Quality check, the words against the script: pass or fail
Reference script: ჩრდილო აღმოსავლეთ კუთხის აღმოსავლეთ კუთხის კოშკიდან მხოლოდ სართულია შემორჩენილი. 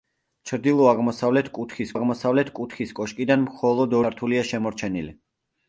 pass